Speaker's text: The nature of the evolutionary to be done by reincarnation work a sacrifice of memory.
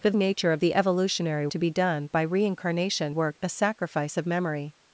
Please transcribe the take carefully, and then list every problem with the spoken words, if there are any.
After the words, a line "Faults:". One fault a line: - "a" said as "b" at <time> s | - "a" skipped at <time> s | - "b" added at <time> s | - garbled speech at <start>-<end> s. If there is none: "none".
The nature of the evolutionary to be done by reincarnation work a sacrifice of memory.
Faults:
none